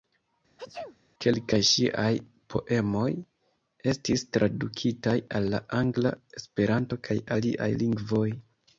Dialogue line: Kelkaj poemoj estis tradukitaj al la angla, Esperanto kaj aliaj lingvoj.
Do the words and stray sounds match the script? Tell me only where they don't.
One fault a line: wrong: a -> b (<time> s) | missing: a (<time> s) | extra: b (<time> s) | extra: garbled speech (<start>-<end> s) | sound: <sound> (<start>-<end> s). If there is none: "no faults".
sound: sneeze (0.6-1.0 s)
extra: ŝiaj (1.7 s)